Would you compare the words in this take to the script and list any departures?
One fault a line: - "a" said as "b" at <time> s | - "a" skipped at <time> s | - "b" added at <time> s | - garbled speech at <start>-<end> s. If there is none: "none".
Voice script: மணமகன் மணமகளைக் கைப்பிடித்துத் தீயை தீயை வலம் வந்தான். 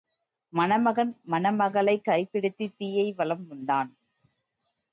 - "தீயை" skipped at 3.1 s